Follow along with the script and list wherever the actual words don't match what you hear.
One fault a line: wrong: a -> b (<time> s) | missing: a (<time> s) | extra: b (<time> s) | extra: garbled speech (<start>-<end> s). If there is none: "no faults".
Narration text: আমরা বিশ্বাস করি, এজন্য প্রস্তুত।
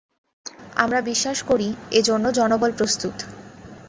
extra: জনবল (2.3 s)